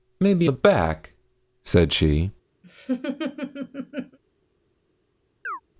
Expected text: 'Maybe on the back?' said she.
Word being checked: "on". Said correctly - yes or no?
no